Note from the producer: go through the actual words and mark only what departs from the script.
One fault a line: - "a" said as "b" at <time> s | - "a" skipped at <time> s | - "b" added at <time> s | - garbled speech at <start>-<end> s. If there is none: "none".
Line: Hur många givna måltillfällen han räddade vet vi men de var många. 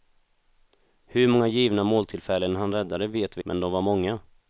none